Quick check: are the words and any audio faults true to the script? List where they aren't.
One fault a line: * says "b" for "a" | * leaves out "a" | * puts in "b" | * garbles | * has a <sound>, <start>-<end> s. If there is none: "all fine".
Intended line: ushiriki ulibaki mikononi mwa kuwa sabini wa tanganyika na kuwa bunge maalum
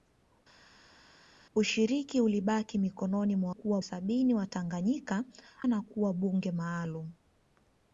all fine